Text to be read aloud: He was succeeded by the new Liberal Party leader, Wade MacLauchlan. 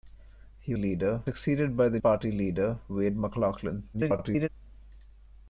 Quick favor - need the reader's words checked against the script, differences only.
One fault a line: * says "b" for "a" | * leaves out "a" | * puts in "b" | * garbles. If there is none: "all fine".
* says "leader" for "was"
* leaves out "new Liberal"
* garbles